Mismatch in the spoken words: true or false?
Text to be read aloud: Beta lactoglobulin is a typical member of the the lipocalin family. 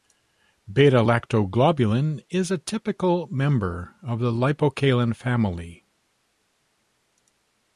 true